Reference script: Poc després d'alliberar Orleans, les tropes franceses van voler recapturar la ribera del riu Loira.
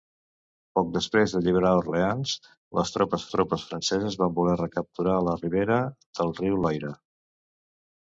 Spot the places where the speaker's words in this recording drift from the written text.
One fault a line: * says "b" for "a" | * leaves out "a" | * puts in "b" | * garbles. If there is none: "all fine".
* puts in "tropes"